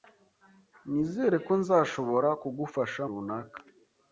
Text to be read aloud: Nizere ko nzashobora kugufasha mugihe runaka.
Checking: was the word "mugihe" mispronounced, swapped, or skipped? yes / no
yes